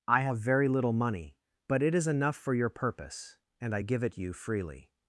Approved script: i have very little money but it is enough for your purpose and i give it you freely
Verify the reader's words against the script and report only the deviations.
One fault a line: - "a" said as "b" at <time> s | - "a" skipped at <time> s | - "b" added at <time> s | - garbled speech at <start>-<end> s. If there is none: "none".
none